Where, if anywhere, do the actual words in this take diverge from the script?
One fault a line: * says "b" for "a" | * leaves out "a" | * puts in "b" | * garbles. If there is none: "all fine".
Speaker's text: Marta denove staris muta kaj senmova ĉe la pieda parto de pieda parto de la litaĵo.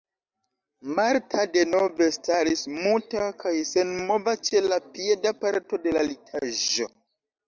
* leaves out "pieda parto de"